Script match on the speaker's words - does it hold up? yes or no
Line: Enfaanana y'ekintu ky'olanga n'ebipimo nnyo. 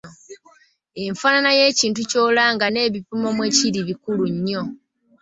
no